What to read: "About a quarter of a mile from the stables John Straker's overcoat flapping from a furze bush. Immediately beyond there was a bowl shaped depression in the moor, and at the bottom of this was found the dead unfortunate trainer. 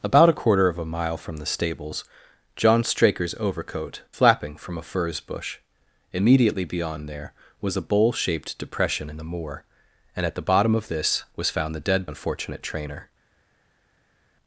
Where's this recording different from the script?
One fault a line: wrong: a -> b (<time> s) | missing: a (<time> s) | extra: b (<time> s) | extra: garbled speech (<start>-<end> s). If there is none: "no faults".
no faults